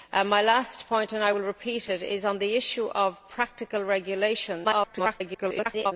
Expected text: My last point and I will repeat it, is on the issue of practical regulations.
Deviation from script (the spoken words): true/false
true